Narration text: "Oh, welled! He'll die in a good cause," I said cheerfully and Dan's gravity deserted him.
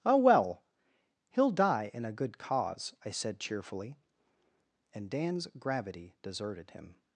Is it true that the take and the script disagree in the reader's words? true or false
true